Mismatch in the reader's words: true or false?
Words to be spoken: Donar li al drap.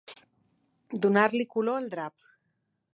true